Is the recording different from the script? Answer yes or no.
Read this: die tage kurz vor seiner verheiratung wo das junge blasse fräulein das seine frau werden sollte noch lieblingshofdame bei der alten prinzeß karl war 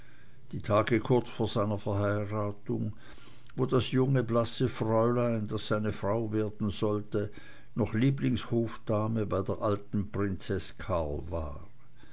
no